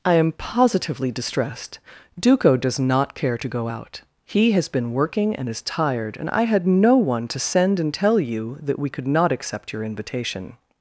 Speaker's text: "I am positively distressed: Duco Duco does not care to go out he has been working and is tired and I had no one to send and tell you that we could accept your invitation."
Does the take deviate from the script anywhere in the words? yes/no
yes